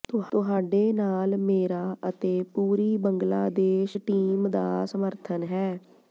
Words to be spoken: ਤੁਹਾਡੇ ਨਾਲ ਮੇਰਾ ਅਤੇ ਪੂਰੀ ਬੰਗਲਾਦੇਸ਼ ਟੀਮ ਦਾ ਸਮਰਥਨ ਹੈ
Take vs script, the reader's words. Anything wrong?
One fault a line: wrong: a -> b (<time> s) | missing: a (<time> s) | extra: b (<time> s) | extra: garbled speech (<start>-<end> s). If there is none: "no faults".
no faults